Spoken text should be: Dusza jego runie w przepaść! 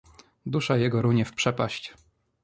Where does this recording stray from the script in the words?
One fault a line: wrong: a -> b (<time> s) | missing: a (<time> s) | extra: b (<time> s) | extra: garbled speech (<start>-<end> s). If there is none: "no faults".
no faults